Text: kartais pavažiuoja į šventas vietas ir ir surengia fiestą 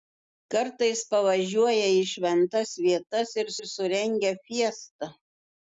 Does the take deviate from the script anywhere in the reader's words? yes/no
no